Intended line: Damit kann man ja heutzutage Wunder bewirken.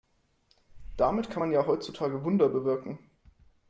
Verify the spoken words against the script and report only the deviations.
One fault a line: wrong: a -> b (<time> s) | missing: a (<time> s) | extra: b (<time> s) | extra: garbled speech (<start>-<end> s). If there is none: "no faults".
no faults